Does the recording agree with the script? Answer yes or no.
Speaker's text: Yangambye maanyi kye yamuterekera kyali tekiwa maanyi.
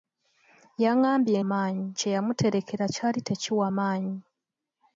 yes